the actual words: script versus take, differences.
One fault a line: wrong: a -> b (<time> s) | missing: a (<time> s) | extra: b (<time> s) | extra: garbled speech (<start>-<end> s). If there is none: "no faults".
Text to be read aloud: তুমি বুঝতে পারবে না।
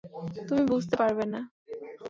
no faults